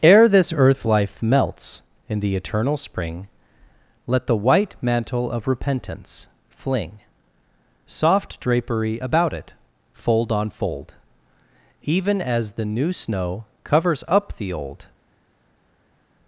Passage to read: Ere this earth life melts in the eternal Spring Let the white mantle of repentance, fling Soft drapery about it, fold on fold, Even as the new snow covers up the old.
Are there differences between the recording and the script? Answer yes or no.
no